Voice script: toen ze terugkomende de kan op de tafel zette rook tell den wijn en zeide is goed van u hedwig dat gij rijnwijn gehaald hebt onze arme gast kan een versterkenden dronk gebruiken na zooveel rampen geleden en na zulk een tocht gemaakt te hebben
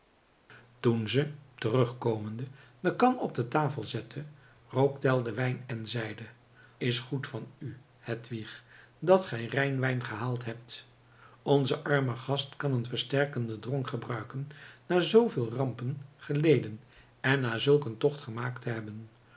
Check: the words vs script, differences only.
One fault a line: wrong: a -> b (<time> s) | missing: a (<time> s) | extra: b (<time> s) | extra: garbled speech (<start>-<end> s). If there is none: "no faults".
no faults